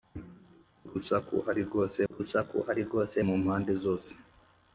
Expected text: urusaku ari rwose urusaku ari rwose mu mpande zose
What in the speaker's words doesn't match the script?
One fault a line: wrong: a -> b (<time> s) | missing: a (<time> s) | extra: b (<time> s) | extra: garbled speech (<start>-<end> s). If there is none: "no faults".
no faults